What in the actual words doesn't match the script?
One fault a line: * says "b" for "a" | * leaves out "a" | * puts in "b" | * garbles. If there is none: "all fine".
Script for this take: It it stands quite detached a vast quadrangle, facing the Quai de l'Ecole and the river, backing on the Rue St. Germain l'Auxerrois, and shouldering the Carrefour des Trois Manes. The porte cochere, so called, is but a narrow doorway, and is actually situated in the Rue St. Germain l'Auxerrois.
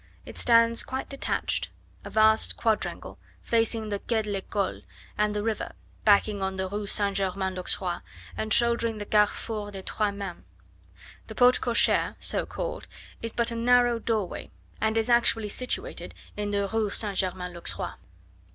* leaves out "it"